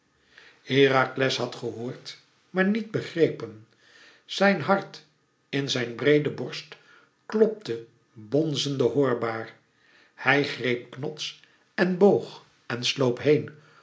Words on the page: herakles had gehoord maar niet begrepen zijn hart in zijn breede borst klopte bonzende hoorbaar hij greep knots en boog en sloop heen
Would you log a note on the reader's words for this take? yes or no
no